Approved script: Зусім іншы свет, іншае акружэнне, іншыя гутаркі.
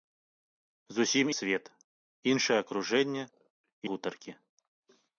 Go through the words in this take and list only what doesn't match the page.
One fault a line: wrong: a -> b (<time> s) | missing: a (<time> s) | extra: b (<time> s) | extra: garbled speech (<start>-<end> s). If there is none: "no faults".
missing: іншы (1.3 s)
missing: іншыя (3.2 s)